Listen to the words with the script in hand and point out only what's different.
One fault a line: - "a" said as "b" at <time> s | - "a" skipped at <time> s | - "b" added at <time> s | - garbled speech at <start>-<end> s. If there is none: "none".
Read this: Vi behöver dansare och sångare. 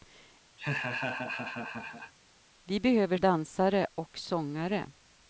none